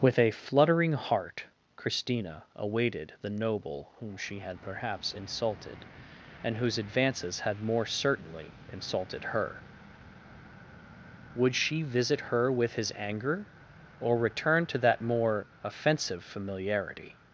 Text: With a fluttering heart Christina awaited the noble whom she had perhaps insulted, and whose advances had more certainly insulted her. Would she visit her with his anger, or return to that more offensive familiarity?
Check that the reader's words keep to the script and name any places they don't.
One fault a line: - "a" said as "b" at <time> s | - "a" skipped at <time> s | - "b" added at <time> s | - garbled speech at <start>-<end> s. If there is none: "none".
none